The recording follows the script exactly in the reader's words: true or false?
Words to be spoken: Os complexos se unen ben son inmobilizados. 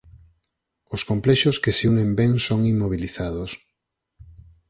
false